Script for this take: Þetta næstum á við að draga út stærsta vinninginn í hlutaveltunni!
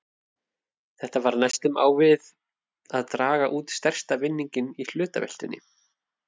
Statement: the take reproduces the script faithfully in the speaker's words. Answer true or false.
false